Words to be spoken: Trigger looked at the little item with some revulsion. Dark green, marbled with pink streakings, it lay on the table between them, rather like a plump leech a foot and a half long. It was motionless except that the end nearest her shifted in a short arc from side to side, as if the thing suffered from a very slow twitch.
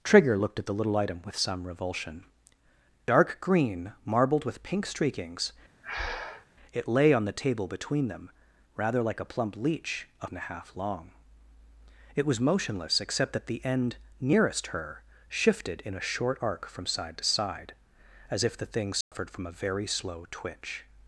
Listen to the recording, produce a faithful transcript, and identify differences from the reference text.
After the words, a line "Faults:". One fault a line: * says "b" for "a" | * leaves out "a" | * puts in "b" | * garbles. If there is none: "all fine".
Trigger looked at the little item with some revulsion. Dark green, marbled with pink streakings, it lay on the table between them, rather like a plump leech a and a half long. It was motionless except that the end nearest her shifted in a short arc from side to side, as if the thing suffered from a very slow twitch.
Faults:
* leaves out "foot"